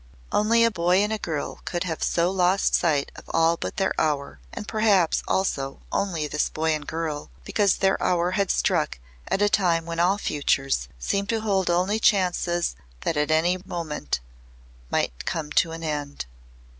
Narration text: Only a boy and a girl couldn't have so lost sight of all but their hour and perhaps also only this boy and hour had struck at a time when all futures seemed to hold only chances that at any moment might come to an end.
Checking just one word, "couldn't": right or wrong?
wrong